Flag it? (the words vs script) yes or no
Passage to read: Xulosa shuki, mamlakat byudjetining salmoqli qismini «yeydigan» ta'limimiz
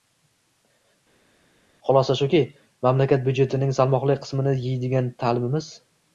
no